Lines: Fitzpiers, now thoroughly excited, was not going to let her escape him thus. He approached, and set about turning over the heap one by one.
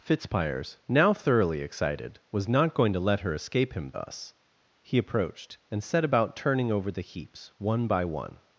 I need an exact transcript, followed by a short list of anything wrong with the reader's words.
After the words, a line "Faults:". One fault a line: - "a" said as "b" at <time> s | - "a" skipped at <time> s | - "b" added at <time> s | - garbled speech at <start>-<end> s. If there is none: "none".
Fitzpiers, now thoroughly excited, was not going to let her escape him thus. He approached, and set about turning over the heaps one by one.
Faults:
- "heap" said as "heaps" at 7.0 s